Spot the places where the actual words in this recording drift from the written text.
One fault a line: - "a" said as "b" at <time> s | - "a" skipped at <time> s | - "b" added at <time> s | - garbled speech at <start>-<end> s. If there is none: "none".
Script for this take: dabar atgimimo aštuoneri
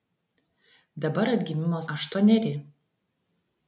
none